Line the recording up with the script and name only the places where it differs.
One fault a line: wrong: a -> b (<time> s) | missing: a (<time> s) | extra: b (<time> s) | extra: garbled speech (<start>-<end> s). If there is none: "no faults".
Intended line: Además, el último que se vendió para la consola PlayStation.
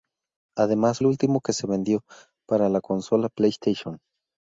no faults